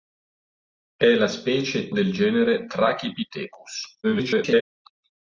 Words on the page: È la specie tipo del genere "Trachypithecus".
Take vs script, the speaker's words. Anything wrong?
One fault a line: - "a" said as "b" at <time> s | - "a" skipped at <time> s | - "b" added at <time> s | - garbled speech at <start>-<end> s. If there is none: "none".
- "tipo" skipped at 1.9 s
- garbled speech at 4.0-4.6 s